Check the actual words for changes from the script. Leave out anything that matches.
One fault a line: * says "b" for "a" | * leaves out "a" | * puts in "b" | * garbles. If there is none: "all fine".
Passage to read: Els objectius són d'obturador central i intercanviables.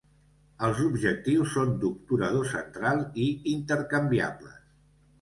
all fine